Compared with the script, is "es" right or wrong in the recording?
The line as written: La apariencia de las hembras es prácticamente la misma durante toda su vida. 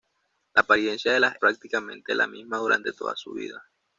wrong